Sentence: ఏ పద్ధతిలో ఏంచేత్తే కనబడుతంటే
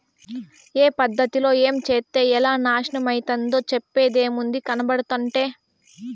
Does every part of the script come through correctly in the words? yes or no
no